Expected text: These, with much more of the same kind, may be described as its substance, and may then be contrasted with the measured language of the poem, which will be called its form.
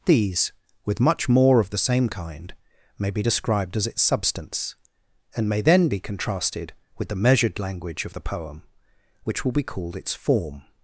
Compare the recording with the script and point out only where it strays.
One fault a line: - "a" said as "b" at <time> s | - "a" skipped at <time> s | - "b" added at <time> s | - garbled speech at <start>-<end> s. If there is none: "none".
none